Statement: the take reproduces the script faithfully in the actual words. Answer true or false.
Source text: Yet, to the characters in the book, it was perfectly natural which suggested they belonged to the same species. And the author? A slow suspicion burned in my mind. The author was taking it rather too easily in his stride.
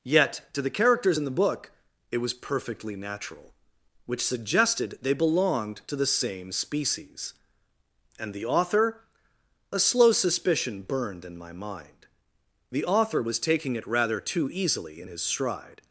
true